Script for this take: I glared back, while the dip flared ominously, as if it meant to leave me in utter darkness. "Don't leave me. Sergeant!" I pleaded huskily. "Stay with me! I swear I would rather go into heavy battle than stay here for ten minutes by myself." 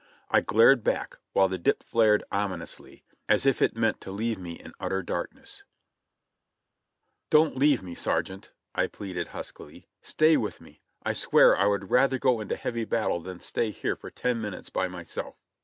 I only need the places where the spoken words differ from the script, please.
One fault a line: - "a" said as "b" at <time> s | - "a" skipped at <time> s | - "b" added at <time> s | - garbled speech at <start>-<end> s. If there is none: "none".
none